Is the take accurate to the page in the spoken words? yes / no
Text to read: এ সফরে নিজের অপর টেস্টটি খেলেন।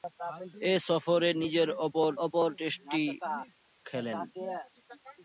no